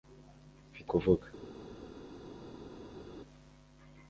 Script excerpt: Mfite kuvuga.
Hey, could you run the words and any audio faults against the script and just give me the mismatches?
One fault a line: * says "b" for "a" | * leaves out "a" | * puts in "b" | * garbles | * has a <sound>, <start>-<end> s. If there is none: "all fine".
all fine